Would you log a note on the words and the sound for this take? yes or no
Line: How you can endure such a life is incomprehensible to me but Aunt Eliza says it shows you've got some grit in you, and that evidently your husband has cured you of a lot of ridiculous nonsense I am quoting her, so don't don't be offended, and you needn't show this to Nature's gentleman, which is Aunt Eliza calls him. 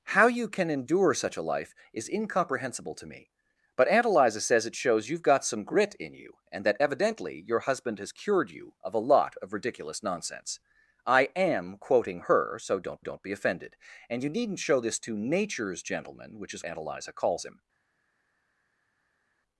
no